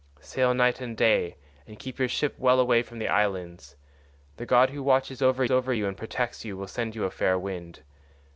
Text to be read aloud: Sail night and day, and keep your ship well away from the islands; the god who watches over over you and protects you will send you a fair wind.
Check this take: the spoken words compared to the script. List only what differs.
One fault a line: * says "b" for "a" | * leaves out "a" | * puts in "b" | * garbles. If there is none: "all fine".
all fine